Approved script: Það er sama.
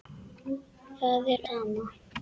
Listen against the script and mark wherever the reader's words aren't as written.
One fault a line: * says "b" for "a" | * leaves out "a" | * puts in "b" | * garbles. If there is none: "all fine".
all fine